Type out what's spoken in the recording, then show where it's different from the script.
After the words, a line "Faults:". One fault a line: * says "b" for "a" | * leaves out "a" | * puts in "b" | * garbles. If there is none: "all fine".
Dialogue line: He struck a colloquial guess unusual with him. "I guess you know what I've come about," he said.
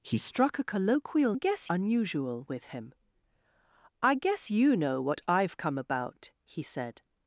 He struck a colloquial guess unusual with him. "I guess you know what I've come about," he said.
Faults:
all fine